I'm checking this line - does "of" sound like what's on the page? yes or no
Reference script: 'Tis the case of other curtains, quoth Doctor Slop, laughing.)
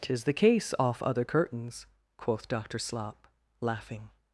no